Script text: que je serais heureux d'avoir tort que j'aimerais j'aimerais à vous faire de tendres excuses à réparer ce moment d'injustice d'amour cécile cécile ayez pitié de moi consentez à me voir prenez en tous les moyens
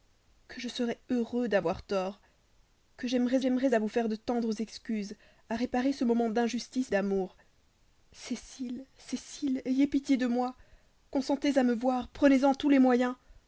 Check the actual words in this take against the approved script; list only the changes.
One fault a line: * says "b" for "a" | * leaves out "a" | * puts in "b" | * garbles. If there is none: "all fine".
all fine